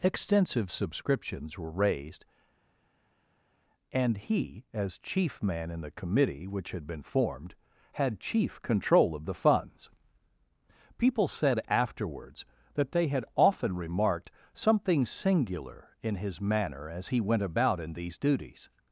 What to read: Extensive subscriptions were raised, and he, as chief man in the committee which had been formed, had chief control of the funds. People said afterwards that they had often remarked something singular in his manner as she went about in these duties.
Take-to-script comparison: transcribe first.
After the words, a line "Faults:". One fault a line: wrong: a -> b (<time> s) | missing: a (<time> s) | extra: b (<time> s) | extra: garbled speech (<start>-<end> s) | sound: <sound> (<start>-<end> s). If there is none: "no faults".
Extensive subscriptions were raised, and he, as chief man in the committee which had been formed, had chief control of the funds. People said afterwards that they had often remarked something singular in his manner as he went about in these duties.
Faults:
wrong: she -> he (17.1 s)